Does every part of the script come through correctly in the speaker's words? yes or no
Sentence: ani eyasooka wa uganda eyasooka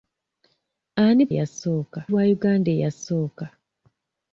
yes